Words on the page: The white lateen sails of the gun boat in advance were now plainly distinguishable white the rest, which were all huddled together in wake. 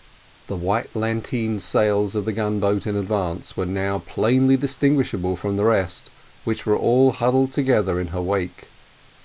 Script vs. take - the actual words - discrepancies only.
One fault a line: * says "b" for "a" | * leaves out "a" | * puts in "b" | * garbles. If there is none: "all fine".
* says "from" for "white"
* puts in "her"